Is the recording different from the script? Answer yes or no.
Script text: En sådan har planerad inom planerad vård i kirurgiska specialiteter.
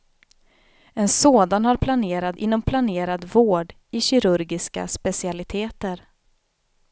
no